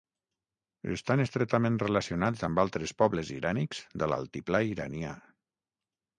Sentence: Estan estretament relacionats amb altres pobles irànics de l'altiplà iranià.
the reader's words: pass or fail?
pass